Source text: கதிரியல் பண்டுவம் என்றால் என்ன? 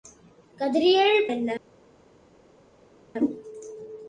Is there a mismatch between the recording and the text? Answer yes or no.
yes